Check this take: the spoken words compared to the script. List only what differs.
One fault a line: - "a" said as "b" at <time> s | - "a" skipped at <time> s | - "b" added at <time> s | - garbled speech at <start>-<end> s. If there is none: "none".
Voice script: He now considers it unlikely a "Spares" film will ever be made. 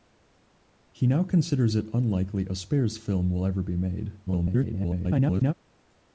- garbled speech at 4.3-5.5 s